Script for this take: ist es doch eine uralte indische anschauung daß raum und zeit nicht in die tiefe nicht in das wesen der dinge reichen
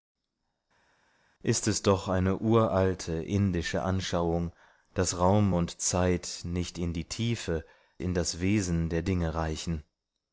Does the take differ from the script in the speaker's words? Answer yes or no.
yes